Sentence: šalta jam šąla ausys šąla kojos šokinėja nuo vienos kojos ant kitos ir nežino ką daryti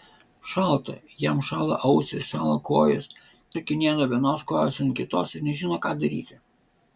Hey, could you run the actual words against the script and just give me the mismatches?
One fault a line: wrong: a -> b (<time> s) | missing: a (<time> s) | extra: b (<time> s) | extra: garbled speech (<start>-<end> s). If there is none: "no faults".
no faults